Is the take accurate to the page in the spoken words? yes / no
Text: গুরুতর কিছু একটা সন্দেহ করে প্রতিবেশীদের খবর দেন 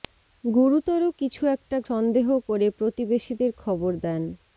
yes